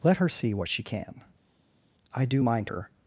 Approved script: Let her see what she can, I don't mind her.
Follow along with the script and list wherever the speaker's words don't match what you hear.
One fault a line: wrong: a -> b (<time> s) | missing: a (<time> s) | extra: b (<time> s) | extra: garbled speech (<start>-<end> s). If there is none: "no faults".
wrong: don't -> do (2.3 s)